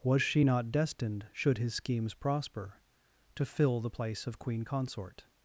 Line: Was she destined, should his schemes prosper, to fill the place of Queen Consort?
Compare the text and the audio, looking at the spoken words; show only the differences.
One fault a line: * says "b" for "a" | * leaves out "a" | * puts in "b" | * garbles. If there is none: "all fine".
* puts in "not"